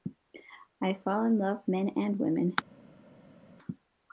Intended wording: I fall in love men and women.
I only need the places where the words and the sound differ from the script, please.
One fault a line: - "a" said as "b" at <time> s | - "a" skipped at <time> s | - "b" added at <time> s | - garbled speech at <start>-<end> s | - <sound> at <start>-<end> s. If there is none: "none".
none